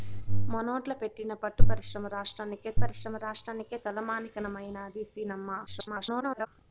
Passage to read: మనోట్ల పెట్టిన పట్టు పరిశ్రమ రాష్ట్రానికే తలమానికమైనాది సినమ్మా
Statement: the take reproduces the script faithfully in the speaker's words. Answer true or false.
false